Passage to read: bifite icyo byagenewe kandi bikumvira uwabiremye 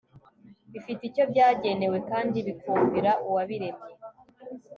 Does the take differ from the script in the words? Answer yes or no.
no